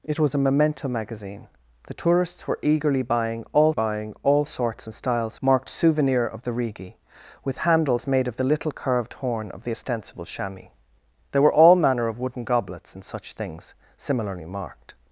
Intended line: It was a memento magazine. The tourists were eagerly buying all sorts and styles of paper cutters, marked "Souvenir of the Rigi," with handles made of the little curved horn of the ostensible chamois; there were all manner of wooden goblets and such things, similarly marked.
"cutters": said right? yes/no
no